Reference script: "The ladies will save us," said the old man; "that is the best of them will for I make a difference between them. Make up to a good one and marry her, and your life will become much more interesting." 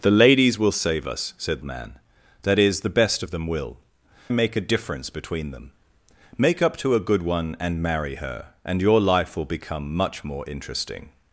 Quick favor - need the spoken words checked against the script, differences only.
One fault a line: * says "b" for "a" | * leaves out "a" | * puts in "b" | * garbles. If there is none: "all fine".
* leaves out "the old"
* leaves out "for I"